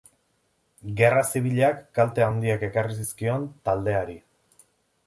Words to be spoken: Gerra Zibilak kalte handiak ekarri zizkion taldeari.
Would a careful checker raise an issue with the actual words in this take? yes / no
no